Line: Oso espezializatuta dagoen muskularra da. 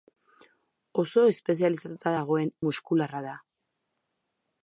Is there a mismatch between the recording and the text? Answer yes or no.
no